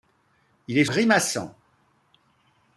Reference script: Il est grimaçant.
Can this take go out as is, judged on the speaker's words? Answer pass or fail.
pass